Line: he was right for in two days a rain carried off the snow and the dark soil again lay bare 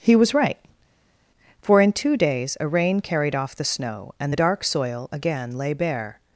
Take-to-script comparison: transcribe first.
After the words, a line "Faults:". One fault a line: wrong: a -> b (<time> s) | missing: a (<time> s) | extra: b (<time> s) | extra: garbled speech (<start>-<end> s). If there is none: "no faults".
he was right for in two days a rain carried off the snow and the dark soil again lay bare
Faults:
no faults